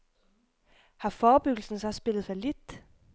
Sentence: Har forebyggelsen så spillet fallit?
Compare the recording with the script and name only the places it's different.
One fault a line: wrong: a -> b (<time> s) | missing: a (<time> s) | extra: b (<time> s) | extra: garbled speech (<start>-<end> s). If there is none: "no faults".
no faults